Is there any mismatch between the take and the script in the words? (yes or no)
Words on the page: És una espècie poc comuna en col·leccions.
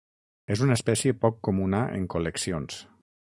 no